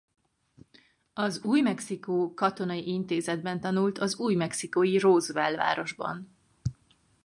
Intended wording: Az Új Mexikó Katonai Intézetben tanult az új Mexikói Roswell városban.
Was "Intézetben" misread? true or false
false